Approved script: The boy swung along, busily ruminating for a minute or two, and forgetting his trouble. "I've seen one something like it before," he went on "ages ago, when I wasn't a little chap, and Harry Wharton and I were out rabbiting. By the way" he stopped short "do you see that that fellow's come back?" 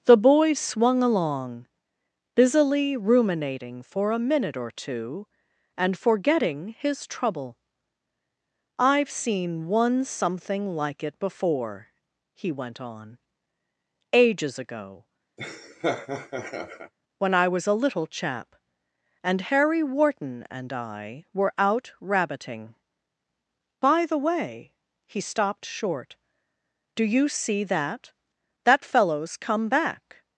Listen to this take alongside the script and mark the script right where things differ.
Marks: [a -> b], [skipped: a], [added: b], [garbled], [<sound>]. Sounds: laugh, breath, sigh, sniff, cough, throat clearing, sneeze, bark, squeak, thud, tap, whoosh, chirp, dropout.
The boy swung along, busily ruminating for a minute or two, and forgetting his trouble. "I've seen one something like it before," he went on "ages ago, [laugh] when I [wasn't -> was] a little chap, and Harry Wharton and I were out rabbiting. By the way" he stopped short "do you see that that fellow's come back?"